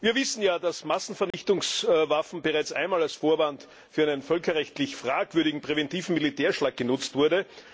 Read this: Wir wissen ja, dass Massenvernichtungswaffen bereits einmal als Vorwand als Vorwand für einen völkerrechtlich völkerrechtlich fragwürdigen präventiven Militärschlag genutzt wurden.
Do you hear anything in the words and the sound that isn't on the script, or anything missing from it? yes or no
yes